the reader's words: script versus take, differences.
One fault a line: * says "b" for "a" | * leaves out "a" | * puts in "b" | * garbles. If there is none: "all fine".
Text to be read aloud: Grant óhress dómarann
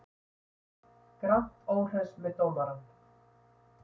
* puts in "með"